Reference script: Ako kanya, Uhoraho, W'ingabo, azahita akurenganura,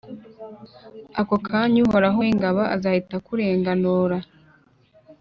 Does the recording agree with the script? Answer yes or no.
yes